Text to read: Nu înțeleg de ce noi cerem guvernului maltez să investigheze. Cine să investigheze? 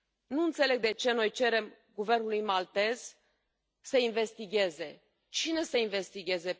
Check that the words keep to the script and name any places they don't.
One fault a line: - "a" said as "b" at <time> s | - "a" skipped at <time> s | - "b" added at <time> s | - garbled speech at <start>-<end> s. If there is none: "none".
none